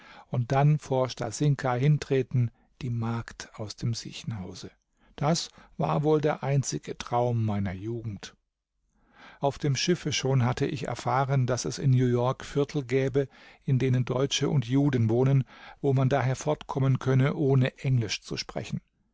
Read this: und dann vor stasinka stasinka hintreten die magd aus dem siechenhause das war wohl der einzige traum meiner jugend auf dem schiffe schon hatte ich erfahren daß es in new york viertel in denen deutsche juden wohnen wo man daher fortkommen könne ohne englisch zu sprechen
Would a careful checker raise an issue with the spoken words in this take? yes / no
yes